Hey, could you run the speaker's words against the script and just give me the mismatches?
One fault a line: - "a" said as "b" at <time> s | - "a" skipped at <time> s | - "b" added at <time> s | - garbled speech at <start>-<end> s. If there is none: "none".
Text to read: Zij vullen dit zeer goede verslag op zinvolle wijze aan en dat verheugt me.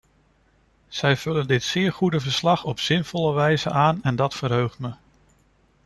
none